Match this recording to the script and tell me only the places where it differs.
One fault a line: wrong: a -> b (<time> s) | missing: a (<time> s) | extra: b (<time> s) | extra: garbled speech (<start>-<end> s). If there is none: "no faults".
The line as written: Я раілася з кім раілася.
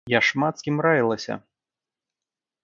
wrong: раілася -> шмат (0.2 s)